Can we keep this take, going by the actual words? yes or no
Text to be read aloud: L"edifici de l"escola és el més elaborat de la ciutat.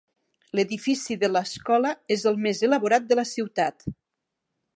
yes